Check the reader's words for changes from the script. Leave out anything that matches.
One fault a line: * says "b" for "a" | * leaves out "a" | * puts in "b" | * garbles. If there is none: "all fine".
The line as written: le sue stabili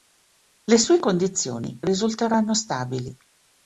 * puts in "condizioni risulteranno"